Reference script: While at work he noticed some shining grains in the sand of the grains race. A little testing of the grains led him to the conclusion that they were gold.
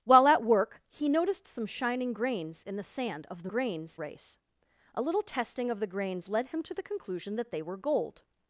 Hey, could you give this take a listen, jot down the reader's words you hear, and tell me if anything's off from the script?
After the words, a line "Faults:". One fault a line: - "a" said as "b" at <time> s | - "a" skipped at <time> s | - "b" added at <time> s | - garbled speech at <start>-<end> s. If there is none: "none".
While at work he noticed some shining grains in the sand of the grains race. A little testing of the grains led him to the conclusion that they were gold.
Faults:
none